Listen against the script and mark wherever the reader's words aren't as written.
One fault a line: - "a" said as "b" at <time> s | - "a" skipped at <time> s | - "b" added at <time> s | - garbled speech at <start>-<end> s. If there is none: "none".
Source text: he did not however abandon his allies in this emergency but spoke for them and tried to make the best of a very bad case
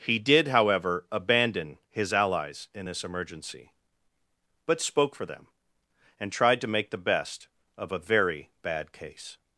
- "not" skipped at 0.5 s